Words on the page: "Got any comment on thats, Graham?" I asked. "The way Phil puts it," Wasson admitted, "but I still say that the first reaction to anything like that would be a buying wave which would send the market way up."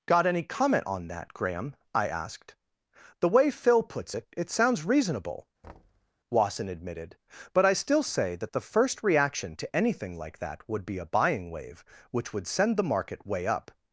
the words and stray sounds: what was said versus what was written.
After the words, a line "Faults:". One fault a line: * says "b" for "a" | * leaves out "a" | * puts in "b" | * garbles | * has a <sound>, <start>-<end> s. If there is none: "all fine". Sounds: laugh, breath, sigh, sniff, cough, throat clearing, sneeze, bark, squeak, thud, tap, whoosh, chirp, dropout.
"Got any comment on that, Graham?" I asked. "The way Phil puts it, it sounds reasonable," Wasson admitted, "but I still say that the first reaction to anything like that would be a buying wave which would send the market way up."
Faults:
* says "that" for "thats"
* puts in "it sounds reasonable"
* has a thud, 5.6-6.1 s